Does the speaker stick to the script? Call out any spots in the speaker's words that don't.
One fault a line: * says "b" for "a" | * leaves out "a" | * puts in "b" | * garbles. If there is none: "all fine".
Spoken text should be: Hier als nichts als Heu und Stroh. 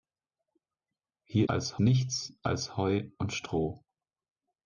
all fine